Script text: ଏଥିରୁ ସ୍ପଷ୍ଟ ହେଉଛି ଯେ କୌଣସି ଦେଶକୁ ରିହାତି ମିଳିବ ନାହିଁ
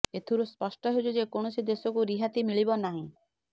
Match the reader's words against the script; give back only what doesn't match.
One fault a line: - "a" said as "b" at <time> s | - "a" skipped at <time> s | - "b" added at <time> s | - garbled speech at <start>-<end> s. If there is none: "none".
none